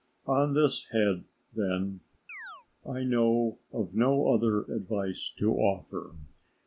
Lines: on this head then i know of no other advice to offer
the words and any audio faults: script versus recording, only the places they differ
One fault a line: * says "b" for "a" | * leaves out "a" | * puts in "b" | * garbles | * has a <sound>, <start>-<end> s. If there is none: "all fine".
* has a chirp, 2.3-2.7 s